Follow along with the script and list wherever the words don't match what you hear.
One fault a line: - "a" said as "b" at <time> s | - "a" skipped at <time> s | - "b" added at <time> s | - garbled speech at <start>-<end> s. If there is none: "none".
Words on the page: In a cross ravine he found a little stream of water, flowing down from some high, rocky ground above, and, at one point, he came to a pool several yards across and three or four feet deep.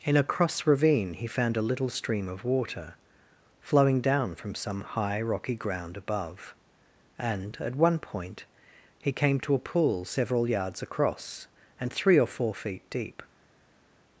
none